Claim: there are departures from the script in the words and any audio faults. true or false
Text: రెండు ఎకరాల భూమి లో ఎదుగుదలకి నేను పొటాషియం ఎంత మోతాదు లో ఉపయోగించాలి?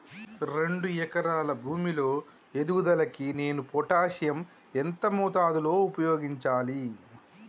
false